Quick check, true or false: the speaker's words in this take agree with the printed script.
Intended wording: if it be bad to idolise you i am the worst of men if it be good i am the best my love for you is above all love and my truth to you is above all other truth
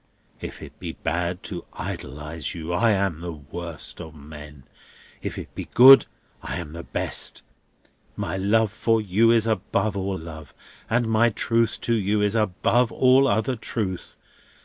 true